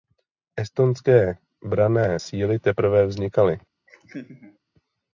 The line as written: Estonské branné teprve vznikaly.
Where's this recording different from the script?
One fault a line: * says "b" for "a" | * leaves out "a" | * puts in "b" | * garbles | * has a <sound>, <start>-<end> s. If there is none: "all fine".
* puts in "síly"
* has a laugh, 3.9-4.6 s